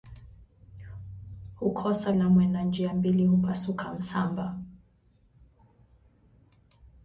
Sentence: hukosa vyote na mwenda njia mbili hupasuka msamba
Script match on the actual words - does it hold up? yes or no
no